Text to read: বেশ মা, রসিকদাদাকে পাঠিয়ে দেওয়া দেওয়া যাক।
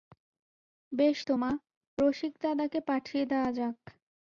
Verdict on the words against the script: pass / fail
fail